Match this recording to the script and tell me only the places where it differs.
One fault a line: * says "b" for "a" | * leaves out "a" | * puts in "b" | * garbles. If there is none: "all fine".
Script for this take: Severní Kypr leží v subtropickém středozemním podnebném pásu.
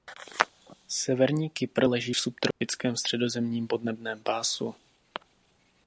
all fine